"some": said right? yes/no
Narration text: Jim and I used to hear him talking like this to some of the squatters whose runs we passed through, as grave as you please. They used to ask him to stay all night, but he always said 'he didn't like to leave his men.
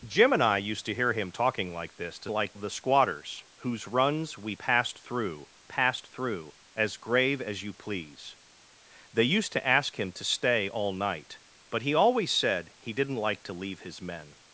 no